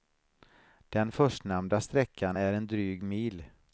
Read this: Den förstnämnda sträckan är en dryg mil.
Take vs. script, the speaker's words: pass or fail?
pass